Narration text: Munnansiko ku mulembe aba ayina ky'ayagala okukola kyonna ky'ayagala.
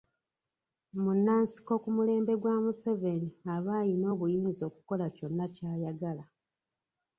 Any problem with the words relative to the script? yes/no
yes